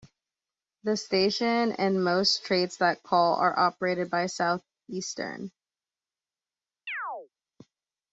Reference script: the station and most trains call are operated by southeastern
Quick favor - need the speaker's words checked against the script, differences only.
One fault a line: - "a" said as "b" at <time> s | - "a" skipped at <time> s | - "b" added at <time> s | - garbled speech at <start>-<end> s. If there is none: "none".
- "that" added at 2.8 s